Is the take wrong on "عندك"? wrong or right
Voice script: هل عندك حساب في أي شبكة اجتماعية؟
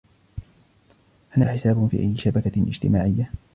wrong